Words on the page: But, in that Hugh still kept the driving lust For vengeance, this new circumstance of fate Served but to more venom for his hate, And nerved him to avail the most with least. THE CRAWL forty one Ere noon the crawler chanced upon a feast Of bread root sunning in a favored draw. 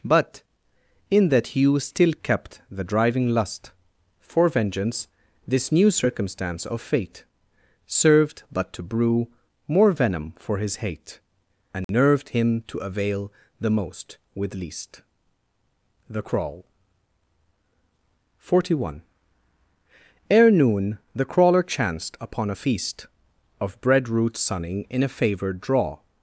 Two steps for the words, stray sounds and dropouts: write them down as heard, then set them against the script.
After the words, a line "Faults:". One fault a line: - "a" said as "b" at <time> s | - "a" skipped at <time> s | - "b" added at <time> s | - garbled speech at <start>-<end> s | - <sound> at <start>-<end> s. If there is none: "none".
But, in that Hugh still kept the driving lust For vengeance, this new circumstance of fate Served but to brew more venom for his hate, And nerved him to avail the most with least. THE CRAWL forty one Ere noon the crawler chanced upon a feast Of bread root sunning in a favored draw.
Faults:
- "brew" added at 8.8 s
- dropout at 11.8-11.9 s